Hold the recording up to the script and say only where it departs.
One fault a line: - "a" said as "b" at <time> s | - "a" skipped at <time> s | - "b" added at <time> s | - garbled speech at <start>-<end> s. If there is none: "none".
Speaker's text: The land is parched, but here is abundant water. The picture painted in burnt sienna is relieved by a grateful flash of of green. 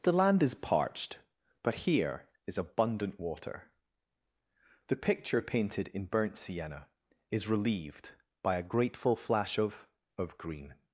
none